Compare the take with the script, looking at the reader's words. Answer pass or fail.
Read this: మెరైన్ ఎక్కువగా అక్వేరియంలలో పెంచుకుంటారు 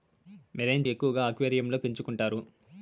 pass